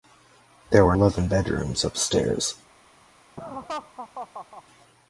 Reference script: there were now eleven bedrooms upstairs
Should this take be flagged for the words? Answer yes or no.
yes